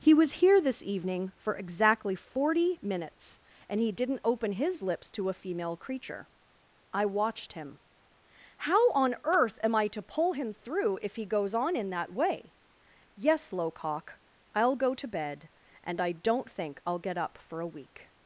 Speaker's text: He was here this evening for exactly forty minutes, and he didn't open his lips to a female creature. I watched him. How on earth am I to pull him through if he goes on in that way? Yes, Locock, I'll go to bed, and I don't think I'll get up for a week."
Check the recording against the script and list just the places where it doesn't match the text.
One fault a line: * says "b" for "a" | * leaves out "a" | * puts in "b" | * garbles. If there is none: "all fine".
all fine